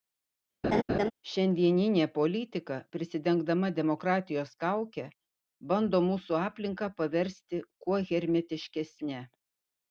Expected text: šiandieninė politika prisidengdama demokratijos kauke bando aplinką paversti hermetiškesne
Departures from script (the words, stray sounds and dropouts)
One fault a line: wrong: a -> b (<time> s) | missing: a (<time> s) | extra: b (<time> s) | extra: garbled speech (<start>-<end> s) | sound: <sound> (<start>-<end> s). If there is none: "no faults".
sound: laugh (0.6-1.1 s)
extra: mūsų (6.1 s)
extra: kuo (7.9 s)